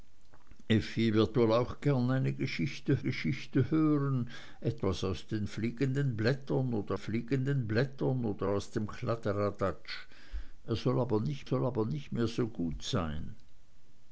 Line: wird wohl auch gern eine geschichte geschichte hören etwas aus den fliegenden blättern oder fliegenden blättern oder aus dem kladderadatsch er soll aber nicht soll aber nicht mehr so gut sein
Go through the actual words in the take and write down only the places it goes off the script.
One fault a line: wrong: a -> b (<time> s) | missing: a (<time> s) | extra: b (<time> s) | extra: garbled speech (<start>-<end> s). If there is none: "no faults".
no faults